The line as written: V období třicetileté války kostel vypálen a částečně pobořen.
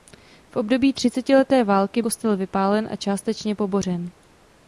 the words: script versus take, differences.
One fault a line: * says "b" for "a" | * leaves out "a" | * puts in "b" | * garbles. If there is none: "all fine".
all fine